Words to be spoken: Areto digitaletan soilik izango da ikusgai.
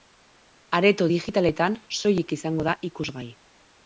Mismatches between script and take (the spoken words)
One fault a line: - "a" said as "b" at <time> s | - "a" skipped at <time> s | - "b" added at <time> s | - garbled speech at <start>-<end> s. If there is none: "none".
none